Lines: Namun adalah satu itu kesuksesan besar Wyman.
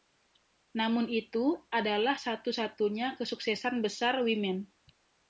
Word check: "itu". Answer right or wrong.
wrong